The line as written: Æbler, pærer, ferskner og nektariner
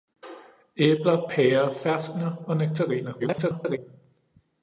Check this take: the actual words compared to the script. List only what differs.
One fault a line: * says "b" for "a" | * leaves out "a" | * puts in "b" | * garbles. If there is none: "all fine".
* garbles